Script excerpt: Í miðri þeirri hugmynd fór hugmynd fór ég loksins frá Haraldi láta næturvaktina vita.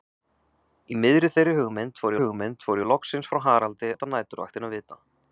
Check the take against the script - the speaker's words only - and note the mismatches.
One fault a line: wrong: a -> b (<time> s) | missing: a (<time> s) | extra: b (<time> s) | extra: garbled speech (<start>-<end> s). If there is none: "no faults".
no faults